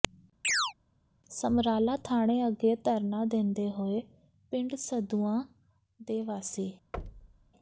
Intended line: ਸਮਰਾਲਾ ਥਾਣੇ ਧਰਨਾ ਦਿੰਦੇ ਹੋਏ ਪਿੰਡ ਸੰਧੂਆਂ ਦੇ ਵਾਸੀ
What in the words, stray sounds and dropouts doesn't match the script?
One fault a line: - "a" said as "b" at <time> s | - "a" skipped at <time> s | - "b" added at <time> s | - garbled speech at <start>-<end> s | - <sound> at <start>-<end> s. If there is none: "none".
- chirp at 0.4-0.7 s
- "ਅੱਗੇ" added at 2.5 s
- thud at 6.9-7.5 s